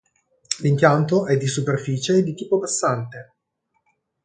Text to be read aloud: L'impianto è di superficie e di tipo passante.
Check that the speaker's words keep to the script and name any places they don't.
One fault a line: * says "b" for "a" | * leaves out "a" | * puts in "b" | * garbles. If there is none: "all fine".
all fine